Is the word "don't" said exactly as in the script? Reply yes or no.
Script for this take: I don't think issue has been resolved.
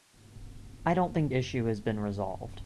yes